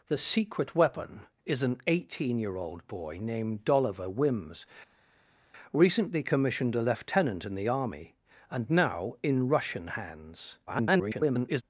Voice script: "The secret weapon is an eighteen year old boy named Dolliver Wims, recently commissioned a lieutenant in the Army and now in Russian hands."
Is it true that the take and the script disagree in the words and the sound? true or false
true